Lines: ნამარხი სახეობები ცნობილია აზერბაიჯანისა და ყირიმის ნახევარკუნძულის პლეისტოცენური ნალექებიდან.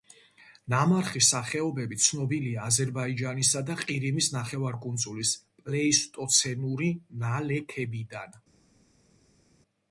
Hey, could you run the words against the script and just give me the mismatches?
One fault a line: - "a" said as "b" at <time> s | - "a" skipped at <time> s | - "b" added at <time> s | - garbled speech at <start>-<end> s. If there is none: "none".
none